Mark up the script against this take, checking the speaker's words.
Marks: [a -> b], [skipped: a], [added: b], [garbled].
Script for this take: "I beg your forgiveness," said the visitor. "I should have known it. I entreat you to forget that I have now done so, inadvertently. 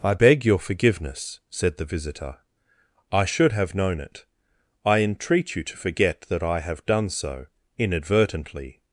"I beg your forgiveness," said the visitor. "I should have known it. I entreat you to forget that I have [skipped: now] done so, inadvertently.